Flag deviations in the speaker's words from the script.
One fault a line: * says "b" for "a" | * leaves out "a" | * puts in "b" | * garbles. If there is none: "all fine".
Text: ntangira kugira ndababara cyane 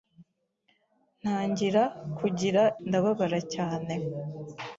all fine